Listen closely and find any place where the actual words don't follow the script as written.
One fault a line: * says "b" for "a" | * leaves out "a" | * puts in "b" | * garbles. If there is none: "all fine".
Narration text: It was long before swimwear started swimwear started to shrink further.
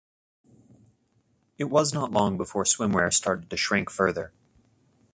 * puts in "not"
* leaves out "swimwear started"